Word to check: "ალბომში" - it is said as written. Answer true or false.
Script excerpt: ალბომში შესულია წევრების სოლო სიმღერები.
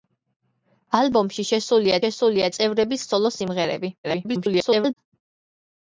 true